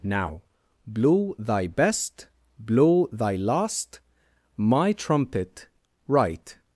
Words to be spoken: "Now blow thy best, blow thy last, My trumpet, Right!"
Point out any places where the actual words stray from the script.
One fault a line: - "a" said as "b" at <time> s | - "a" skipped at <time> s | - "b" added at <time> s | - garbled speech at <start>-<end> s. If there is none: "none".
none